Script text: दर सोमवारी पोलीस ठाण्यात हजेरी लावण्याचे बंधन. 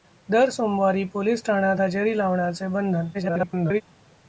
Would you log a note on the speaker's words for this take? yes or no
yes